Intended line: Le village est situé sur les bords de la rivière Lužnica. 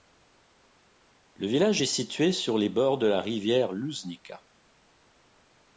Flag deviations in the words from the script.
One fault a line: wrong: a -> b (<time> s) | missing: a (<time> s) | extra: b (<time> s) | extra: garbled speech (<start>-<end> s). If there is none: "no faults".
no faults